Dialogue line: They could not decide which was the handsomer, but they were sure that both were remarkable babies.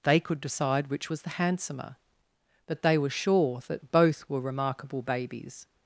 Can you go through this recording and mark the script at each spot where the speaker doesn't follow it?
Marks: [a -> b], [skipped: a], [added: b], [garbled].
They could [skipped: not] decide which was the handsomer, but they were sure that both were remarkable babies.